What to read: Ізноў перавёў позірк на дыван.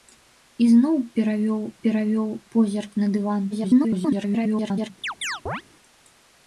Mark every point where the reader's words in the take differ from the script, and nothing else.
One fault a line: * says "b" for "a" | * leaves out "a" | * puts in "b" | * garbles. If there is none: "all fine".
* puts in "перавёў"
* garbles